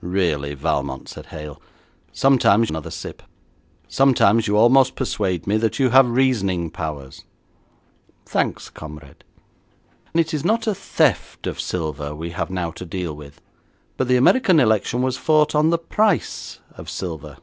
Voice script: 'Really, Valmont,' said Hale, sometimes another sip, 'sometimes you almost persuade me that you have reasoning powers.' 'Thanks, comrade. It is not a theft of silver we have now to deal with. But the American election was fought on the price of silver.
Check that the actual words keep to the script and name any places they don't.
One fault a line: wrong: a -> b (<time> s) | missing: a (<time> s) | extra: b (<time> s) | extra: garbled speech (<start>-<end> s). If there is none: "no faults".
no faults